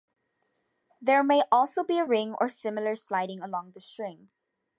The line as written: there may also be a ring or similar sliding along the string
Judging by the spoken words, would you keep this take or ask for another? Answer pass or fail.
pass